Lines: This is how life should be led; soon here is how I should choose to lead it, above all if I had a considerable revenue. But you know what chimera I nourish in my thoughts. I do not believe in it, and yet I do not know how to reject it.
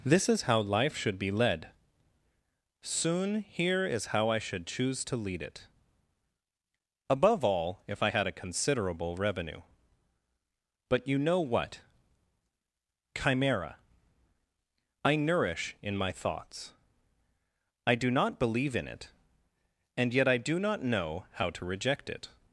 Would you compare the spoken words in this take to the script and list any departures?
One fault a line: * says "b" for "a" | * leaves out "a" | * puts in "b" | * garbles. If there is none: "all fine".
all fine